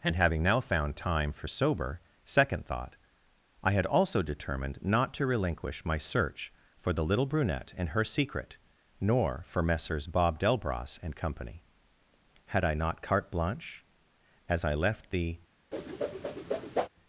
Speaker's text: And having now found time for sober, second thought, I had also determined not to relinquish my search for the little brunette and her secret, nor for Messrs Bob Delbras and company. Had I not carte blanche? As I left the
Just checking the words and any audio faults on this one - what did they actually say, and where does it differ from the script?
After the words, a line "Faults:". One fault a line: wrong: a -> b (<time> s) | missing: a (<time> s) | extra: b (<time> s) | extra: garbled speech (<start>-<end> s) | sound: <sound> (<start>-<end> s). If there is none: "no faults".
And having now found time for sober, second thought, I had also determined not to relinquish my search for the little brunette and her secret, nor for Messrs Bob Delbras and company. Had I not carte blanche? As I left the
Faults:
sound: whoosh (15.7-16.9 s)